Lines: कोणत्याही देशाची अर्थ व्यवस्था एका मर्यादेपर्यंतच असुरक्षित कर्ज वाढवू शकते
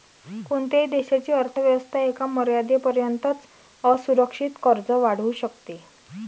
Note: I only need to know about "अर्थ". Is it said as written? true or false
true